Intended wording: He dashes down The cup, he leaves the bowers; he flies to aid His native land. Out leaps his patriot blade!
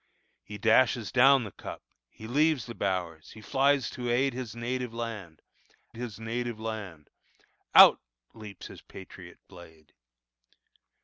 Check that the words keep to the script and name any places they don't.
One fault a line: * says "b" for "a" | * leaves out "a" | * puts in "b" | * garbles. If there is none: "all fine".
* puts in "His native land"